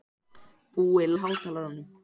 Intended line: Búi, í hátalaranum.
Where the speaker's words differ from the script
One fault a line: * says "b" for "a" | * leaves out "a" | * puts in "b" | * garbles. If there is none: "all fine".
all fine